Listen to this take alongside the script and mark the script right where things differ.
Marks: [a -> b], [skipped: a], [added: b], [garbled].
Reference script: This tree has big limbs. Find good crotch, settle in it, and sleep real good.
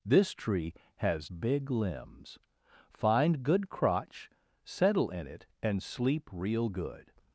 This tree has big limbs. Find good crotch, settle in it, and sleep real good.